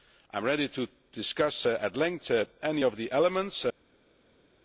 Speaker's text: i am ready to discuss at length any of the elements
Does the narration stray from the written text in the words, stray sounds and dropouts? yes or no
no